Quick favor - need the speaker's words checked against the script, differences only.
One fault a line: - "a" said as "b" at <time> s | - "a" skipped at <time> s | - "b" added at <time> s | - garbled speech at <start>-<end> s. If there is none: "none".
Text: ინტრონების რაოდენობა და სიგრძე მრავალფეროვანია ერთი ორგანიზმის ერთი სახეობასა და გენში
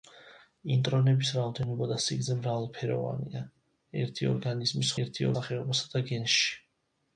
none